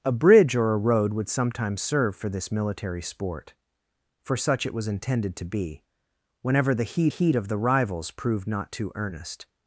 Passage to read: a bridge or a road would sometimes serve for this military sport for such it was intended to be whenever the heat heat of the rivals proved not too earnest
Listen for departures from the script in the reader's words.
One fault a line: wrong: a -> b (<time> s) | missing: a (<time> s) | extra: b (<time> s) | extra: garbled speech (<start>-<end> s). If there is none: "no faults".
no faults